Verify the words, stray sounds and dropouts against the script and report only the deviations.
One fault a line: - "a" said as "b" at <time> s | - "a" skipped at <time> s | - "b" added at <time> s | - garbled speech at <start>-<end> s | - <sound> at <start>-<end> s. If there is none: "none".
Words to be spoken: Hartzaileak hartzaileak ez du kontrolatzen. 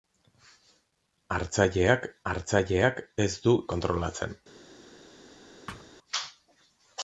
- thud at 5.7-5.9 s